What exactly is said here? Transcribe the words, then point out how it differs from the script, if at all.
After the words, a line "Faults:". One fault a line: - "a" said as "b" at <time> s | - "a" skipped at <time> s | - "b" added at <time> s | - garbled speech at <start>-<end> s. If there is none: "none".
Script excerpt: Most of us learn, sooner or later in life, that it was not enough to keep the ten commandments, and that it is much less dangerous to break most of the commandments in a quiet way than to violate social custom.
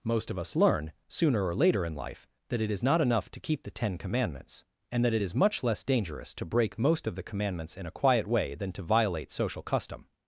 Most of us learn, sooner or later in life, that it is not enough to keep the ten commandments, and that it is much less dangerous to break most of the commandments in a quiet way than to violate social custom.
Faults:
- "was" said as "is" at 2.7 s